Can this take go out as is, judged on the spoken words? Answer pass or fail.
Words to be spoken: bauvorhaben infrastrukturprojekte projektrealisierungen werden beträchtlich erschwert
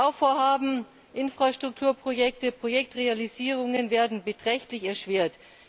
pass